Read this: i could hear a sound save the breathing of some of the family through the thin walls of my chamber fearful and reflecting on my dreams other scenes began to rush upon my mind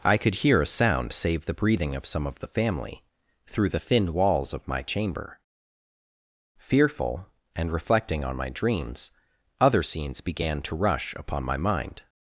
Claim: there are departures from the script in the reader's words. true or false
false